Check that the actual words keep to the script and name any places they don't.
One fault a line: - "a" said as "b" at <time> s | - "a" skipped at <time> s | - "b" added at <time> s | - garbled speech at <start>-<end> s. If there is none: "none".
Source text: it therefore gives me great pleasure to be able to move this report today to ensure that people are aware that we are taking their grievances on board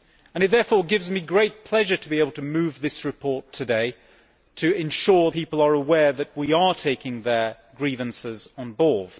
- "that" skipped at 5.3 s